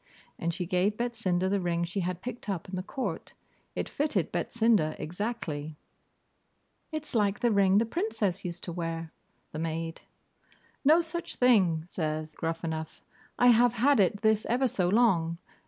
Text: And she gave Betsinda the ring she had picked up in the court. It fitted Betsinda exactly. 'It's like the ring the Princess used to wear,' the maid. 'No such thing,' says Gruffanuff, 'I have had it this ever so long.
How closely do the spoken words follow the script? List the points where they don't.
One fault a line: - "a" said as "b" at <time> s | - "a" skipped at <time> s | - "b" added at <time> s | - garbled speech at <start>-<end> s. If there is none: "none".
none